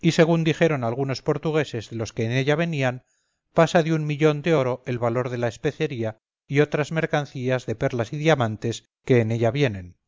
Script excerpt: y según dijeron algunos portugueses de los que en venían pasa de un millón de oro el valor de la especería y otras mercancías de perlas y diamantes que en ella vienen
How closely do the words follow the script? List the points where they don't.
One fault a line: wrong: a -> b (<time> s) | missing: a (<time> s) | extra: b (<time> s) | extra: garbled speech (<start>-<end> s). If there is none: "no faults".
extra: ella (2.3 s)